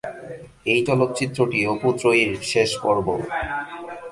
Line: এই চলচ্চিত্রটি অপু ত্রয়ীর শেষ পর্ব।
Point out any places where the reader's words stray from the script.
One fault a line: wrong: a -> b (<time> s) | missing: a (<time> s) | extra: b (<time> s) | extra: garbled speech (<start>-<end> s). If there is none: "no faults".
no faults